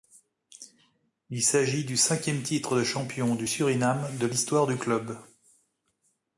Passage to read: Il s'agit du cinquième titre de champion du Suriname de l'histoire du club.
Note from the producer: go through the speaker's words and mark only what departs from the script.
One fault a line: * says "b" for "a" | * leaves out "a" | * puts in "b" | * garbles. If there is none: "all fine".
all fine